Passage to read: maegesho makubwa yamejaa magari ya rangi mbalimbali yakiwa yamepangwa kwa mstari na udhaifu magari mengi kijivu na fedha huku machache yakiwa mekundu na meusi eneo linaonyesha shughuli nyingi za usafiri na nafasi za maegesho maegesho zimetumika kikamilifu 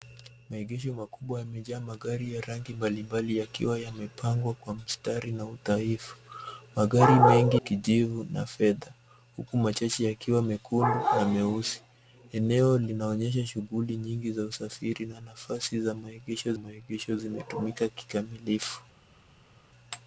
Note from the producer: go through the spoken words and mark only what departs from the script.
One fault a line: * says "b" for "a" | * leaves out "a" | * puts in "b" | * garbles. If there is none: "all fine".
all fine